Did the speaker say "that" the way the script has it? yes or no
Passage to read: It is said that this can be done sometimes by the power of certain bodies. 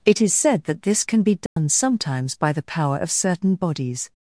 yes